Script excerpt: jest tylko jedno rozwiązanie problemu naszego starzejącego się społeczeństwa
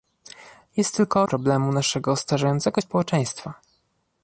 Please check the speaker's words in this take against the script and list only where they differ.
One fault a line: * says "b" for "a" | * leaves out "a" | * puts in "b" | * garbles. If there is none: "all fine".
* leaves out "jedno rozwiązanie"
* leaves out "się"